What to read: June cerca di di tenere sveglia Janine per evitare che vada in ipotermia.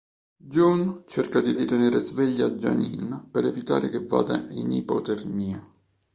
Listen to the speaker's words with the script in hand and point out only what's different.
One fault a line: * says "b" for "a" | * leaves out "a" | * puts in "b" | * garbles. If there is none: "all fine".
all fine